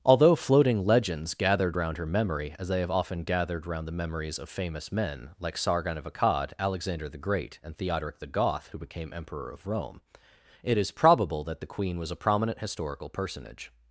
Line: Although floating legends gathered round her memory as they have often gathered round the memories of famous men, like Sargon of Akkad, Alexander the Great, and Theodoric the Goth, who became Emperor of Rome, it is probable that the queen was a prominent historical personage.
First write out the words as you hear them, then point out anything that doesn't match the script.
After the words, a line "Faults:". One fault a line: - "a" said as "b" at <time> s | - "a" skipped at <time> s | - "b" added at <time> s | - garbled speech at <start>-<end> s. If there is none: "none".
Although floating legends gathered round her memory as they have often gathered round the memories of famous men, like Sargon of Akkad, Alexander the Great, and Theodoric the Goth, who became Emperor of Rome, it is probable that the queen was a prominent historical personage.
Faults:
none